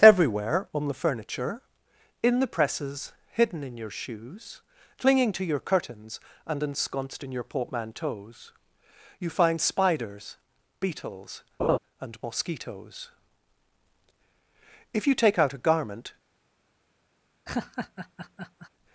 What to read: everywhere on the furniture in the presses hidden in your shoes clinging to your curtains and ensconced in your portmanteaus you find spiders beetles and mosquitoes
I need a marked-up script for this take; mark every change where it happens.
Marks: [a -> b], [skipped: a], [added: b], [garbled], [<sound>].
everywhere on the furniture in the presses hidden in your shoes clinging to your curtains and ensconced in your portmanteaus you find spiders beetles [laugh] and mosquitoes [added: if you take out a garment] [laugh]